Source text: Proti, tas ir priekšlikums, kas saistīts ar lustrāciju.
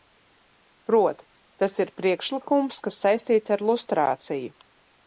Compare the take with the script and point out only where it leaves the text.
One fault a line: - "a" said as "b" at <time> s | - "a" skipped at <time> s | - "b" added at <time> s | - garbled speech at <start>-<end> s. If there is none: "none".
none